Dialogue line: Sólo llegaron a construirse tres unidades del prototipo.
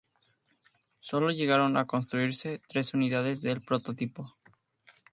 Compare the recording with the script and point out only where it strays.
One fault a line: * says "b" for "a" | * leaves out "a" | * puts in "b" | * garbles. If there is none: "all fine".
all fine